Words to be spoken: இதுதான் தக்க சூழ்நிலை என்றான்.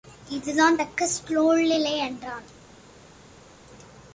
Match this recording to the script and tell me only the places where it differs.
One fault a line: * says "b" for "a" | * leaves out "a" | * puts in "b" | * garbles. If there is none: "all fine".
all fine